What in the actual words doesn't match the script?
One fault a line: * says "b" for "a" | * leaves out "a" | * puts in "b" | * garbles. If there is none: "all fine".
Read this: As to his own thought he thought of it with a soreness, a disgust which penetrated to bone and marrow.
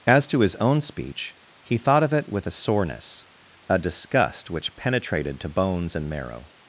* says "speech" for "thought"
* says "bones" for "bone"